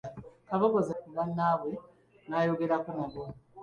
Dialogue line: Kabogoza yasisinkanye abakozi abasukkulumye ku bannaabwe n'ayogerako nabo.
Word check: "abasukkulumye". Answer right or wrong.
wrong